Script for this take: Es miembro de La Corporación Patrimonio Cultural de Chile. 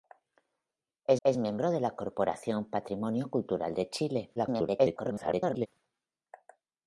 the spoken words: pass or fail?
fail